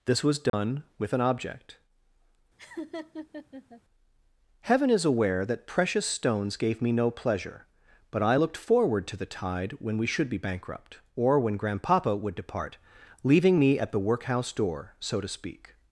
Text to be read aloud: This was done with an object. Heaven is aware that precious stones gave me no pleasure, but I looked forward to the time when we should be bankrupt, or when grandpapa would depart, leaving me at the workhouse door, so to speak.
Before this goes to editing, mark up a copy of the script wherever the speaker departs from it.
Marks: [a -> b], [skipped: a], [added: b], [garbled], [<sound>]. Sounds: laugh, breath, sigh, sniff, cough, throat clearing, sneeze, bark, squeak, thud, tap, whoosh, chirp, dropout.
This was done [dropout] with an object. [laugh] Heaven is aware that precious stones gave me no pleasure, but I looked forward to the [time -> tide] when we should be bankrupt, or when grandpapa would depart, leaving me at the workhouse door, so to speak.